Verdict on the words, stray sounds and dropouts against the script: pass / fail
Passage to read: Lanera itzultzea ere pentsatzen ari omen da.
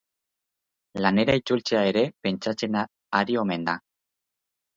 pass